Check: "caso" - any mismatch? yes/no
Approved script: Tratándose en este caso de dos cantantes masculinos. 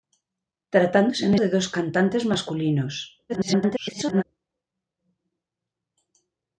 yes